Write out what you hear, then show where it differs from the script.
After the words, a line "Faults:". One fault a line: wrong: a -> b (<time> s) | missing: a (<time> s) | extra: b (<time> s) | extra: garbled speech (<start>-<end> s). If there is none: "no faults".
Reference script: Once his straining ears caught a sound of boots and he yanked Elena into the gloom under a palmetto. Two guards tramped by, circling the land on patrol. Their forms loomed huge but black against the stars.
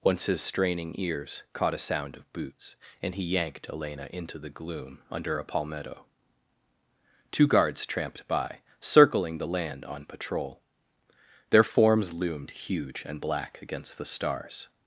Once his straining ears caught a sound of boots and he yanked Elena into the gloom under a palmetto. Two guards tramped by, circling the land on patrol. Their forms loomed huge and black against the stars.
Faults:
wrong: but -> and (13.0 s)